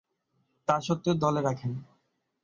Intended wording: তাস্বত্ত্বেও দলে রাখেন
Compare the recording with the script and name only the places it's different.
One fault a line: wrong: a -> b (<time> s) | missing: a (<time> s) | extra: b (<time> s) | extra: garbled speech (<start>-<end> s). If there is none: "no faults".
no faults